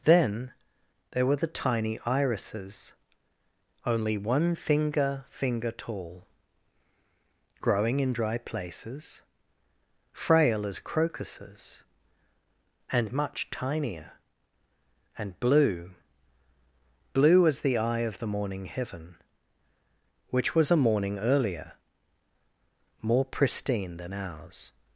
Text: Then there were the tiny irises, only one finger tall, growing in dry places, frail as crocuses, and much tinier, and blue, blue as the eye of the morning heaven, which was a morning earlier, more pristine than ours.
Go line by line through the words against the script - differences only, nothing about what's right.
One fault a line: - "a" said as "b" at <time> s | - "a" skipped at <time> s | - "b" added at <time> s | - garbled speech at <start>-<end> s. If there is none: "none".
- "finger" added at 5.3 s